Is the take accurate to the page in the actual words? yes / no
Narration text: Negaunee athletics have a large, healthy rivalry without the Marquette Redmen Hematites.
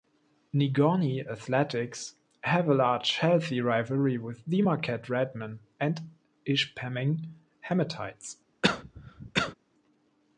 no